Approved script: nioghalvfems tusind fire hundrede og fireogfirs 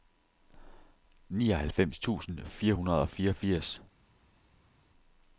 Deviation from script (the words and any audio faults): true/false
false